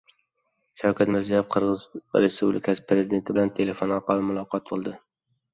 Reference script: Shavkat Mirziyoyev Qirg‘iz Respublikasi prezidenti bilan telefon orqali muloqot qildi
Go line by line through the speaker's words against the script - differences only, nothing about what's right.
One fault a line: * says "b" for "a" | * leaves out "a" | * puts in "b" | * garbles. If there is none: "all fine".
all fine